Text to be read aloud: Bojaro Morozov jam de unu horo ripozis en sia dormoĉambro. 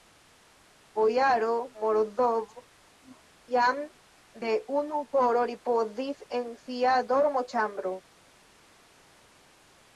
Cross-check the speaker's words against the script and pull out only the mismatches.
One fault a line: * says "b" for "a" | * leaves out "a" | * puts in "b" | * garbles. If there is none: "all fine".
all fine